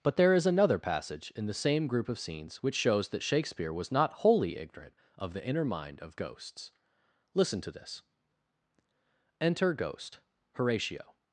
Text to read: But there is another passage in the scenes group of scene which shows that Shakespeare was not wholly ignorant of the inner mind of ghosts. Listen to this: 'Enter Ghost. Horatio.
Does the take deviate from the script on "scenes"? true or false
true